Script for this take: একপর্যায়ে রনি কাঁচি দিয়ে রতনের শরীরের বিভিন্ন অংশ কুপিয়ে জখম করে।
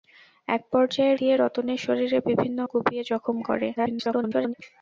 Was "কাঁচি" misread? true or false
true